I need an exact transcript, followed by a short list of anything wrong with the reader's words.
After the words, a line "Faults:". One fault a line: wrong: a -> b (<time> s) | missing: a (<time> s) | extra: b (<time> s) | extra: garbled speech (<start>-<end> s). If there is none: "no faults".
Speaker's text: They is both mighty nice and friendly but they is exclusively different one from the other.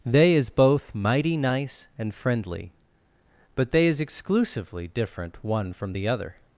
They is both mighty nice and friendly but they is exclusively different one from the other.
Faults:
no faults